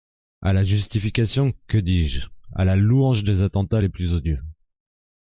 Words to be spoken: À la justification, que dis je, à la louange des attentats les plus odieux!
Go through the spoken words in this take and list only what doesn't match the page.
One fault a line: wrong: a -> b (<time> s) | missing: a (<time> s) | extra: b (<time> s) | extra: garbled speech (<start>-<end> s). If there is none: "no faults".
no faults